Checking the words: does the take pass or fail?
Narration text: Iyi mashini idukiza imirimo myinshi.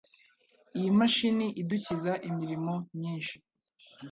pass